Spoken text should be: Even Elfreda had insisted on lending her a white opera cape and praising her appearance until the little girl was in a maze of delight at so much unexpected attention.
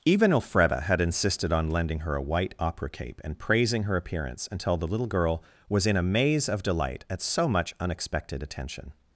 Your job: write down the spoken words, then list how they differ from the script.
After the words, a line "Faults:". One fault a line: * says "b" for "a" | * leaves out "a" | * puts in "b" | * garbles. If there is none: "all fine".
Even Elfreda had insisted on lending her a white opera cape and praising her appearance until the little girl was in a maze of delight at so much unexpected attention.
Faults:
all fine